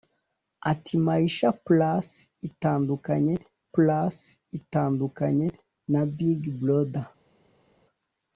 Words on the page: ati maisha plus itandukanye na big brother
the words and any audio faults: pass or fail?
fail